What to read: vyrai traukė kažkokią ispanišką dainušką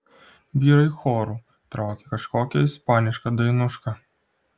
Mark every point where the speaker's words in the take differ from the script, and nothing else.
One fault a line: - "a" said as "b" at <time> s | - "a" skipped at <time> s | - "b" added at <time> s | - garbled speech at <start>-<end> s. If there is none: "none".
- "choru" added at 1.0 s